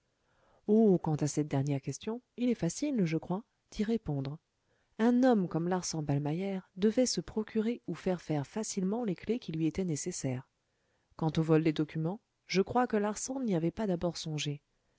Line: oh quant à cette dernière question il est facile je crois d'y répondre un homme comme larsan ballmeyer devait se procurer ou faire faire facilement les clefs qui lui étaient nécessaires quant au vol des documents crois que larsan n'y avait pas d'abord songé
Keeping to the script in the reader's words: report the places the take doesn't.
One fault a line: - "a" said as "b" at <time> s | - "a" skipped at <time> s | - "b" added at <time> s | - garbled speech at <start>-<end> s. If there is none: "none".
- "je" added at 12.5 s